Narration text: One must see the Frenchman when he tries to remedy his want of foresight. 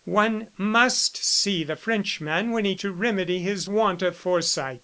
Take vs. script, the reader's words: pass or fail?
fail